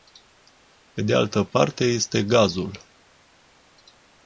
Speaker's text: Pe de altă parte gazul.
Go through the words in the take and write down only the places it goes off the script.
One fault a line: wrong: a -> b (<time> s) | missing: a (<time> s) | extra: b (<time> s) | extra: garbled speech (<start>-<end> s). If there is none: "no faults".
extra: este (1.8 s)